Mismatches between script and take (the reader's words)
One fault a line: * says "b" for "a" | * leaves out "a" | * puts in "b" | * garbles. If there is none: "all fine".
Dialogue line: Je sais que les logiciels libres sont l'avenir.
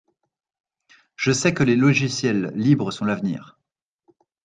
all fine